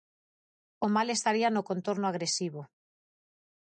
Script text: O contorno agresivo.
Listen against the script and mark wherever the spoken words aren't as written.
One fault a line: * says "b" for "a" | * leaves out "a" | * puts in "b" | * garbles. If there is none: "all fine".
* puts in "mal estaría no"